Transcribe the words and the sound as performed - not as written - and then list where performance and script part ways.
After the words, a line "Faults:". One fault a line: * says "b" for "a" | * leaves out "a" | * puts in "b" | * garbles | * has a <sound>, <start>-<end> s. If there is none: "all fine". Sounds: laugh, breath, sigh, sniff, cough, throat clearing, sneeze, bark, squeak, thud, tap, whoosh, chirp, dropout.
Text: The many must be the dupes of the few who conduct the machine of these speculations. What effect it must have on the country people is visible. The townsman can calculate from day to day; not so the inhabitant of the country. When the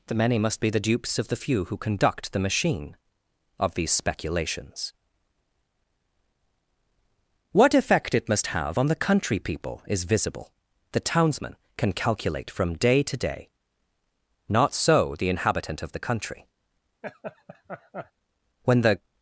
The many must be the dupes of the few who conduct the machine of these speculations. What effect it must have on the country people is visible. The townsman can calculate from day to day; not so the inhabitant of the country. When the
Faults:
* has a laugh, 17.0-18.1 s